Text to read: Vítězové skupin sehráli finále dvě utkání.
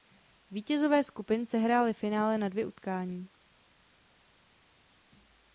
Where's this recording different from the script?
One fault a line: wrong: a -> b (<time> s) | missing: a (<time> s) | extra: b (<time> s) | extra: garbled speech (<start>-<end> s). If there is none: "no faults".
extra: na (2.4 s)